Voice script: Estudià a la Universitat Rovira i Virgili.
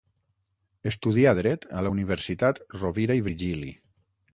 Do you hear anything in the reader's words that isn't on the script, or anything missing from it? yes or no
yes